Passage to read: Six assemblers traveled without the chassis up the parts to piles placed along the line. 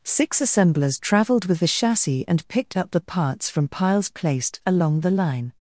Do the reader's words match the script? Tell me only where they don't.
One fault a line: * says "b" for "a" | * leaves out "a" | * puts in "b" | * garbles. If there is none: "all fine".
* says "with" for "without"
* puts in "and picked"
* says "from" for "to"